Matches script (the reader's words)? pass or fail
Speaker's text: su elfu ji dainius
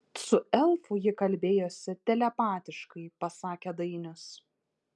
fail